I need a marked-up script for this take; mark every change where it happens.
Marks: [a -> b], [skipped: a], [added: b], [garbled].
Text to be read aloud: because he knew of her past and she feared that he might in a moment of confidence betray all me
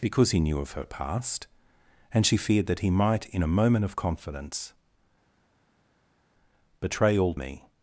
because he knew of her past and she feared that he might in a moment of confidence betray all me